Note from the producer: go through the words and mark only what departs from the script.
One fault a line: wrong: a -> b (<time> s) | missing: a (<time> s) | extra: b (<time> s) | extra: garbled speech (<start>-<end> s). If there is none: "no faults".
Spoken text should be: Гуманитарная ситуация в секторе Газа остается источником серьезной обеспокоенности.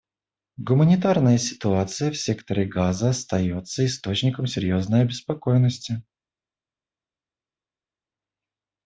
no faults